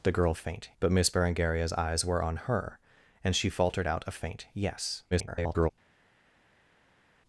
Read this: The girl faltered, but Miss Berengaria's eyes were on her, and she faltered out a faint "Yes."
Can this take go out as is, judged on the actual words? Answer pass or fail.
fail